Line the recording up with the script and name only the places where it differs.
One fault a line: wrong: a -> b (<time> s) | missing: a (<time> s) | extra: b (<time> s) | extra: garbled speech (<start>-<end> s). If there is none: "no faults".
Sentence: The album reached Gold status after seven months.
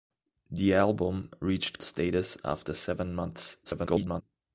missing: Gold (1.8 s)
extra: garbled speech (3.6-4.2 s)